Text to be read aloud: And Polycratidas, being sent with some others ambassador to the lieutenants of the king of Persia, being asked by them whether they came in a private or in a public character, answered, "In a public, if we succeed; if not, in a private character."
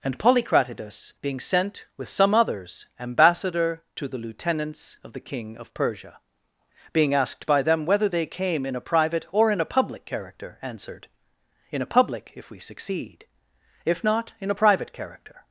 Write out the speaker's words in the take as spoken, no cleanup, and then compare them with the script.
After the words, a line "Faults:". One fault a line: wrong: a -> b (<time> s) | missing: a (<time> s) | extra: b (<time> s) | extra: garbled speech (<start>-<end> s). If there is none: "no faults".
And Polycratidas, being sent with some others ambassador to the lieutenants of the king of Persia, being asked by them whether they came in a private or in a public character, answered, "In a public, if we succeed; if not, in a private character."
Faults:
no faults